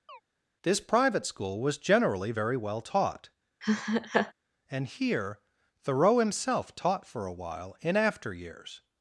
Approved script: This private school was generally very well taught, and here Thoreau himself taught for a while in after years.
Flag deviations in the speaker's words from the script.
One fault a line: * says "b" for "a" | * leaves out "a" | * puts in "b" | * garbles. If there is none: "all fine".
all fine